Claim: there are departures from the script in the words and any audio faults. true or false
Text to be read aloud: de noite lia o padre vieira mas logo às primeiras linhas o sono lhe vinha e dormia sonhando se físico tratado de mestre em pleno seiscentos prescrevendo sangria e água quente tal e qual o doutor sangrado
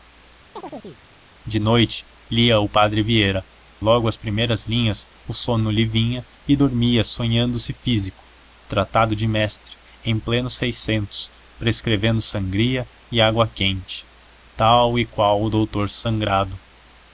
true